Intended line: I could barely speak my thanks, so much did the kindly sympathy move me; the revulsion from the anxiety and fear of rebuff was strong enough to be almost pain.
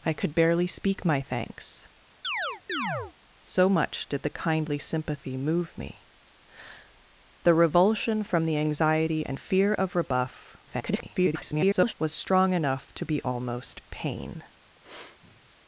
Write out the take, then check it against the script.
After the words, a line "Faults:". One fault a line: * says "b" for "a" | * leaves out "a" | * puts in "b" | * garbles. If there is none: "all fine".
I could barely speak my thanks, so much did the kindly sympathy move me; the revulsion from the anxiety and fear of rebuff [garbled] was strong enough to be almost pain.
Faults:
* garbles